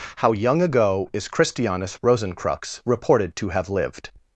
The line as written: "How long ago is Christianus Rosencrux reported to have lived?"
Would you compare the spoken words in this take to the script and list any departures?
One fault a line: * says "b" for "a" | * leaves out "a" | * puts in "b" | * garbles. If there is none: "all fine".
* says "young" for "long"